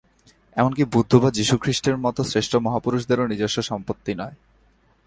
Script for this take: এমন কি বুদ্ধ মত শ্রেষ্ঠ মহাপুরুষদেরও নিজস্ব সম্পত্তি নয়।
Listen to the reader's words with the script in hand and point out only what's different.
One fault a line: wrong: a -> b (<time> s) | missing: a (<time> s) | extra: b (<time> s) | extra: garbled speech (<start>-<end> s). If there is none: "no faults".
extra: বা যীশুখ্রীষ্টের (1.1 s)